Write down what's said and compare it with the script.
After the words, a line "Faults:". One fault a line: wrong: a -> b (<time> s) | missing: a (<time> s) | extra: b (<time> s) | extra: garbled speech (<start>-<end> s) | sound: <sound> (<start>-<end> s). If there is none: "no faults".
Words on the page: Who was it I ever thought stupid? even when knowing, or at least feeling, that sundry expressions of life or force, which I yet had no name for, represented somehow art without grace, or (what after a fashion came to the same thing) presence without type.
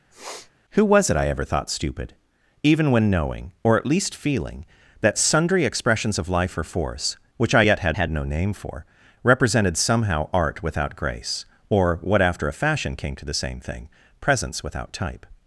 Who was it I ever thought stupid? even when knowing, or at least feeling, that sundry expressions of life or force, which I yet had had no name for, represented somehow art without grace, or (what after a fashion came to the same thing) presence without type.
Faults:
sound: sniff (0.1-0.5 s)
extra: had (8.0 s)